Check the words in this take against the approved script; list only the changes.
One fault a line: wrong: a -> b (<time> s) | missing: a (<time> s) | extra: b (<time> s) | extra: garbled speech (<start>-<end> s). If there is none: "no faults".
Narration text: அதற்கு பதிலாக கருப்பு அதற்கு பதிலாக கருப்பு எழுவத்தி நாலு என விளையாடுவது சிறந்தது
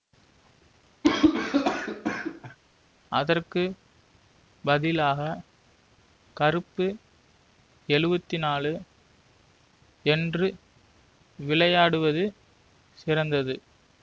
missing: அதற்கு பதிலாக கருப்பு (6.9 s)
wrong: என -> என்று (10.1 s)